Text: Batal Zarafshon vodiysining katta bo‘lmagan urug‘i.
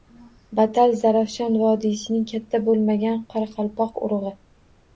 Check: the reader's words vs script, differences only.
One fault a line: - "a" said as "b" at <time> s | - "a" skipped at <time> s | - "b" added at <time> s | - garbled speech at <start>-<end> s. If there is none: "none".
- "qoraqalpoq" added at 3.4 s